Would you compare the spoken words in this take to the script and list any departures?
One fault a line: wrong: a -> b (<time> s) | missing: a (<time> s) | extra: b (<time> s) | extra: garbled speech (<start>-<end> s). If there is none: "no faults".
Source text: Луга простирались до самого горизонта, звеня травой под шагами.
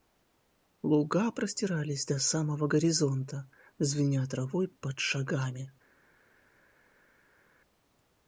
no faults